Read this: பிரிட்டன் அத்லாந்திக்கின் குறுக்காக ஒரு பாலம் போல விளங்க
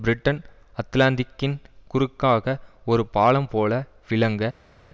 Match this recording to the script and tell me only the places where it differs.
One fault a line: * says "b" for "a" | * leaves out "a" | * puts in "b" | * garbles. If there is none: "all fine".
all fine